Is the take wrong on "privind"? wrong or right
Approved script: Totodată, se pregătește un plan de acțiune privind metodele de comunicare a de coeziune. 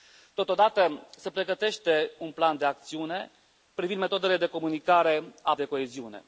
right